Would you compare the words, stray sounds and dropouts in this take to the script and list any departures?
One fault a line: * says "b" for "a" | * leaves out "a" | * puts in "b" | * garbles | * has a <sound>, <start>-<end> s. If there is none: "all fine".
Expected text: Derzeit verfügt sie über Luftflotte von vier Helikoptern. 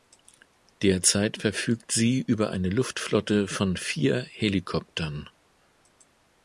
* puts in "eine"